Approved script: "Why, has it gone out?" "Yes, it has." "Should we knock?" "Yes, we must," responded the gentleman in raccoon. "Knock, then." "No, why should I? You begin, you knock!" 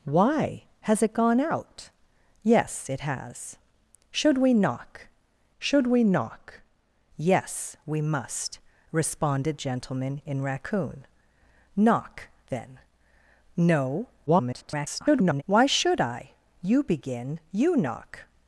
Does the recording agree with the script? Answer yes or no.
no